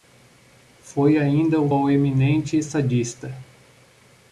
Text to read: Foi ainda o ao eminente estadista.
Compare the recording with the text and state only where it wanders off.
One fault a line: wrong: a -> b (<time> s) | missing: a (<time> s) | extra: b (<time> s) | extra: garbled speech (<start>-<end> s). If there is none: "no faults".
no faults